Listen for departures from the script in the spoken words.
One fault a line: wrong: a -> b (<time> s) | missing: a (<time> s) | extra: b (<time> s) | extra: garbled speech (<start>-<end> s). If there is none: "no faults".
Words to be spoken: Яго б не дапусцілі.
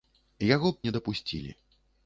no faults